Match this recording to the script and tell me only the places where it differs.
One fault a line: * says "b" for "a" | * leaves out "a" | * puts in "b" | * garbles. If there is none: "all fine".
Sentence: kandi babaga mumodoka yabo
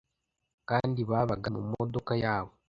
all fine